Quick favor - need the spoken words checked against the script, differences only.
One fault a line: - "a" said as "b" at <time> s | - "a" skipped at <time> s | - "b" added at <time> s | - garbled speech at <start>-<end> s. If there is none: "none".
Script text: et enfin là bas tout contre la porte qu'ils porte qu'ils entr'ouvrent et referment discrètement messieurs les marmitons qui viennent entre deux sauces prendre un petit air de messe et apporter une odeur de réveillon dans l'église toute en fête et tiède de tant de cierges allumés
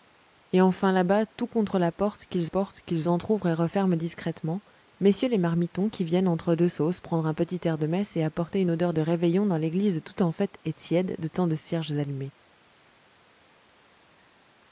none